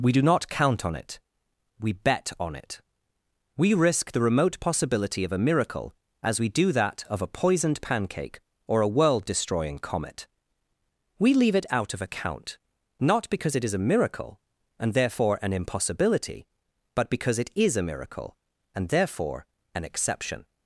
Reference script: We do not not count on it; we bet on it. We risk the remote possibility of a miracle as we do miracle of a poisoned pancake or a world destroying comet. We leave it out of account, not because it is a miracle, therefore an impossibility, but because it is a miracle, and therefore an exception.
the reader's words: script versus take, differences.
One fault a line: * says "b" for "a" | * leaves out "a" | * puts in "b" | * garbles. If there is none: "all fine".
* leaves out "not"
* says "that" for "miracle"
* puts in "and"